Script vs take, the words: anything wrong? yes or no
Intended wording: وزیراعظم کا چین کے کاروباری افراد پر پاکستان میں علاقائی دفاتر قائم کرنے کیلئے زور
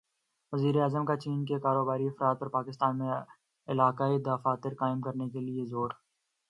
no